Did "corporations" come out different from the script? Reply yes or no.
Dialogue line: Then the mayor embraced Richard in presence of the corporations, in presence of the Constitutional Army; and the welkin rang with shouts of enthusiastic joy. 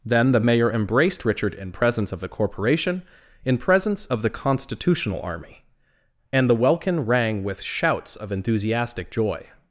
yes